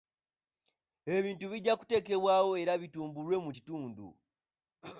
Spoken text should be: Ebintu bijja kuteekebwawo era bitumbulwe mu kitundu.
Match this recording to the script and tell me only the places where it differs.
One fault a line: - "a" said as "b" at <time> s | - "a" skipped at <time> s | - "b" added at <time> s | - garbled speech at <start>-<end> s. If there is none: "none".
none